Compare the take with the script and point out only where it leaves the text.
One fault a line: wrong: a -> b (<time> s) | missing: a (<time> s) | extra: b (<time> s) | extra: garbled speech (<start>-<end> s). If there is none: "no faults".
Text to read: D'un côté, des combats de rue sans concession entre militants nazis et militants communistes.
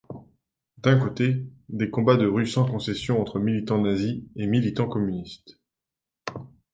no faults